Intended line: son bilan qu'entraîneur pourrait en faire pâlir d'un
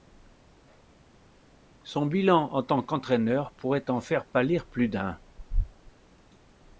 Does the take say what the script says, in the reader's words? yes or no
no